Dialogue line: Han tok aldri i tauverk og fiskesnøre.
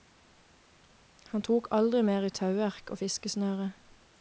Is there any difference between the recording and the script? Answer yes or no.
yes